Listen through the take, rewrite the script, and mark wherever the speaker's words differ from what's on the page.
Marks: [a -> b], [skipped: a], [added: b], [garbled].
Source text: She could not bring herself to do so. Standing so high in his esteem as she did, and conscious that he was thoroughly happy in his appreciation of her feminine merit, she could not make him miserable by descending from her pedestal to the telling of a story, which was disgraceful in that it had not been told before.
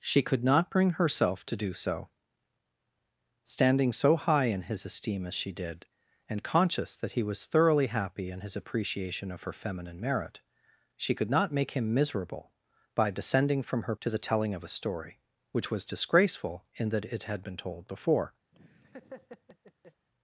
She could not bring herself to do so. Standing so high in his esteem as she did, and conscious that he was thoroughly happy in his appreciation of her feminine merit, she could not make him miserable by descending from her [skipped: pedestal] to the telling of a story, which was disgraceful in that it had [skipped: not] been told before.